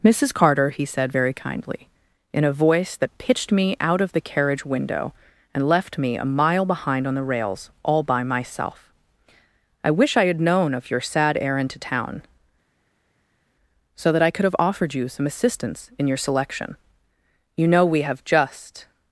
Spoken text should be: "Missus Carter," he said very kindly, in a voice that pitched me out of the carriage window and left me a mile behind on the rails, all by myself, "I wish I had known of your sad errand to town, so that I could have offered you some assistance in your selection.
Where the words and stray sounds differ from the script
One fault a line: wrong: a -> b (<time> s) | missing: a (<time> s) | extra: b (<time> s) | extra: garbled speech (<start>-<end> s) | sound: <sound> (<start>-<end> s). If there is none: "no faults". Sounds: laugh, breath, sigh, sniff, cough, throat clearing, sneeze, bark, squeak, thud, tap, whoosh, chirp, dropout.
extra: You know we have just (17.6 s)